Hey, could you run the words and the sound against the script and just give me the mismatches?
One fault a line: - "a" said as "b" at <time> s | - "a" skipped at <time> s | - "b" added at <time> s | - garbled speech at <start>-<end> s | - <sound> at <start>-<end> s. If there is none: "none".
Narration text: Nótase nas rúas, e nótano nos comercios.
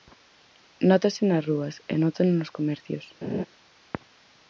- laugh at 3.2-3.5 s